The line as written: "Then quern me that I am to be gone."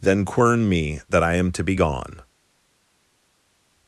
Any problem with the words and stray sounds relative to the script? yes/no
no